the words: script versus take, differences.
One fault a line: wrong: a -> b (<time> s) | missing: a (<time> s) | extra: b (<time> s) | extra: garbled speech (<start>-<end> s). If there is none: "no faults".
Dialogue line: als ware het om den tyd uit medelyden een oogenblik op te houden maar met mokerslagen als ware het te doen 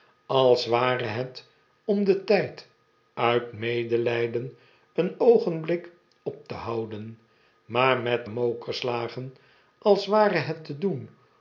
no faults